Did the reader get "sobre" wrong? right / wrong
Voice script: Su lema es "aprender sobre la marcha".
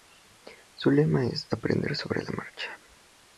right